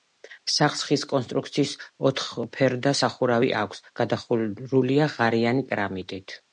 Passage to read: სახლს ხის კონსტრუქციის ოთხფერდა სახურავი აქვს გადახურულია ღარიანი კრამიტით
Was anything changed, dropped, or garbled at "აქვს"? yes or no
no